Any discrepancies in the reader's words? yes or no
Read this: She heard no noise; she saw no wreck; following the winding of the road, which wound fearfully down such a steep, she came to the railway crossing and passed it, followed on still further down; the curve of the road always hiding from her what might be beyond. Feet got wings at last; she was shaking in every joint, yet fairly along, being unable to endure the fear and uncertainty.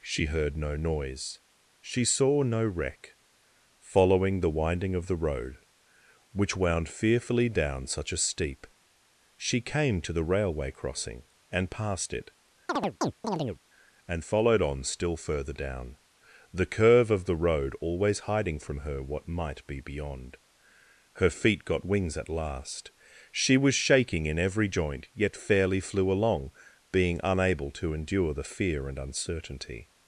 yes